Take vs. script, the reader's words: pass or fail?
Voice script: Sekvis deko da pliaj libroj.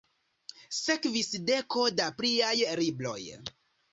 pass